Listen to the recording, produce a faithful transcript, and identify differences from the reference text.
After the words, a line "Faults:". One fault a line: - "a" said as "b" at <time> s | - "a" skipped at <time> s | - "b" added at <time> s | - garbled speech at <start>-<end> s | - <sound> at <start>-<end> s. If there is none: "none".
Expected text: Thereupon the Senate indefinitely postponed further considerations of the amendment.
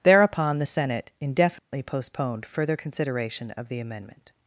Thereupon the Senate indefinitely postponed further consideration of the amendment.
Faults:
- dropout at 1.6-1.7 s
- "considerations" said as "consideration" at 2.7 s